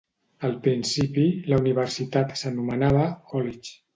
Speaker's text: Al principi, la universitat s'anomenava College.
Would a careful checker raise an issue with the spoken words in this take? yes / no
no